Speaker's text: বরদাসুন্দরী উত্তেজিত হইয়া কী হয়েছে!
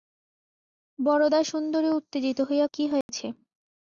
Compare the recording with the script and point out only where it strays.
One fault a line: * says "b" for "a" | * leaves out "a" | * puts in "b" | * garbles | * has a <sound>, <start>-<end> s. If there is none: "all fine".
* has a dropout, 3.0-3.1 s